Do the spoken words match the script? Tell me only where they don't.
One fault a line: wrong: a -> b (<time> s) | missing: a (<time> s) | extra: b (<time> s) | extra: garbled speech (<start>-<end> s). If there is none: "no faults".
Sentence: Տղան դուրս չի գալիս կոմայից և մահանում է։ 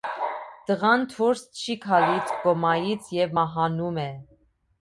no faults